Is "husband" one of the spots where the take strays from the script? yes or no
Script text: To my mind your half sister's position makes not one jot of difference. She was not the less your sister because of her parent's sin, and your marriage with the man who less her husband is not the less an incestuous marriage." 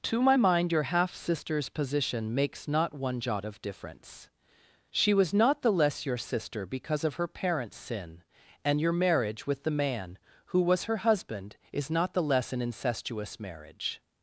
no